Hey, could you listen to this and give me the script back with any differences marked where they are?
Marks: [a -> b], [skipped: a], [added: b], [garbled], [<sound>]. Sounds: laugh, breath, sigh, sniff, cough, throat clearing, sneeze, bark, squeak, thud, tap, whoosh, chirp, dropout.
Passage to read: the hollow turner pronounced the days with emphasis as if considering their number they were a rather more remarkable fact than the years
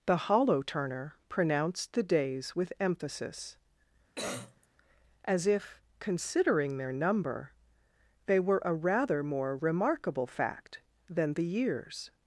the hollow turner pronounced the days with emphasis [cough] as if considering their number they were a rather more remarkable fact than the years